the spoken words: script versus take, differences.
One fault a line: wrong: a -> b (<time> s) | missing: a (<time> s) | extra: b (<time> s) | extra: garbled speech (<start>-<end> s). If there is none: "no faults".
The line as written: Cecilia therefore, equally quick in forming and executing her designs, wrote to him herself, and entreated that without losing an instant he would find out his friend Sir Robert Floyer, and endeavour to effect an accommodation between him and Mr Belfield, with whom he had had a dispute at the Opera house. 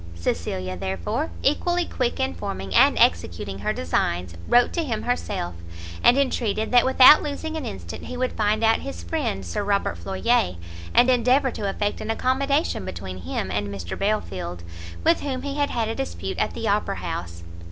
no faults